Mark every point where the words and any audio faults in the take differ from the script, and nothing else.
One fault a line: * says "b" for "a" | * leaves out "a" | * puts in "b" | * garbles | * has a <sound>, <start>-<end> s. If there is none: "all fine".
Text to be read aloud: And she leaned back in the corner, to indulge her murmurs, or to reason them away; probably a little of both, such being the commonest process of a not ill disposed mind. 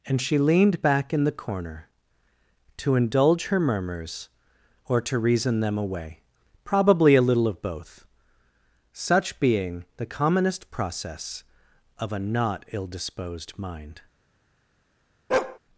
* has a bark, 15.3-15.6 s